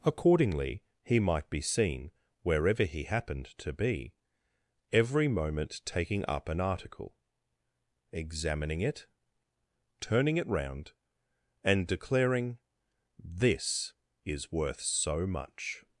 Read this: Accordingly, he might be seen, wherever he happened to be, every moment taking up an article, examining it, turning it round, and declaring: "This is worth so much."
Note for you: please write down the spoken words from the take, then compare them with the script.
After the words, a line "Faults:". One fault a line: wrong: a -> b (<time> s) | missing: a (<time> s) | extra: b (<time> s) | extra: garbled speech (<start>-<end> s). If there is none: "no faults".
Accordingly, he might be seen, wherever he happened to be, every moment taking up an article, examining it, turning it round, and declaring: "This is worth so much."
Faults:
no faults